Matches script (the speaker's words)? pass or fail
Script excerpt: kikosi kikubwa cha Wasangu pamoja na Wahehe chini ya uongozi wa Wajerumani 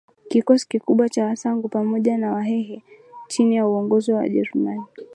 pass